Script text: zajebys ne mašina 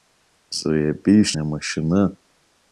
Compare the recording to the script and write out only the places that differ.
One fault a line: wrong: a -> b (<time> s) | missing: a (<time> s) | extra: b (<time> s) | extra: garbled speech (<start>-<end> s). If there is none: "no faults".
no faults